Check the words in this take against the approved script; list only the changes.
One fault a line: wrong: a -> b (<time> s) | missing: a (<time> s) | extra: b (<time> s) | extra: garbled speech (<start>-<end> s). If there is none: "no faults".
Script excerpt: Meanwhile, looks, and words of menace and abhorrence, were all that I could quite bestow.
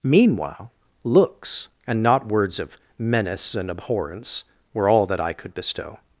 extra: not (2.0 s)
missing: quite (5.5 s)